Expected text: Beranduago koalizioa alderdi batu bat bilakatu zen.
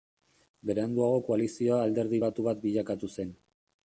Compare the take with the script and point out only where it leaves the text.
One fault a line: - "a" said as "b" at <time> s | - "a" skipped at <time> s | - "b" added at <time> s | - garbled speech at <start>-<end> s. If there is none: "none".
none